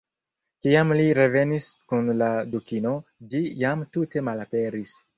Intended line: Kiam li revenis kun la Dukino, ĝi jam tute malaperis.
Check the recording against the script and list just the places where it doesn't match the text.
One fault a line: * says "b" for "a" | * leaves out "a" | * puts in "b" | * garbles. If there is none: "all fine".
all fine